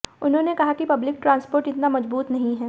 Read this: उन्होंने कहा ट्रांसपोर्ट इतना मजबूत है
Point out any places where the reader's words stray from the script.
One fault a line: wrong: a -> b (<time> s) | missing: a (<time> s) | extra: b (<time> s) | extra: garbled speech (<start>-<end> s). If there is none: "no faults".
extra: कि पब्लिक (0.7 s)
extra: नहीं (2.3 s)